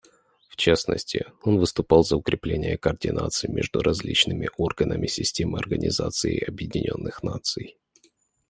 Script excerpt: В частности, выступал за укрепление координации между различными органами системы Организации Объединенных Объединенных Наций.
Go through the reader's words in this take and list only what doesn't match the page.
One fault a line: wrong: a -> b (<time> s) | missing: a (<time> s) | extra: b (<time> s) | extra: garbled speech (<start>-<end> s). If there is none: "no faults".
extra: он (1.4 s)
missing: Объединенных (7.2 s)